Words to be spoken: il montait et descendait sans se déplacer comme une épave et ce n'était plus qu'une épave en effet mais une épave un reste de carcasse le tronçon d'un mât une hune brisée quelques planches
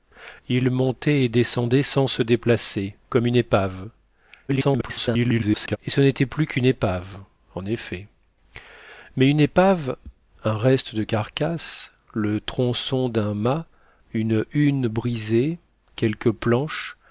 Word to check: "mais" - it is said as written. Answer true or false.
true